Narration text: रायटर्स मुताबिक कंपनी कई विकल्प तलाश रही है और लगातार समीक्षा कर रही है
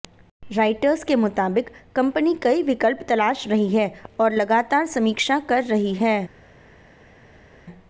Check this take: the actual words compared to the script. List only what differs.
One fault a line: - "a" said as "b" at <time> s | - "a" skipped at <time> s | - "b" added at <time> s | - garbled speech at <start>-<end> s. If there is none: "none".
- "के" added at 1.0 s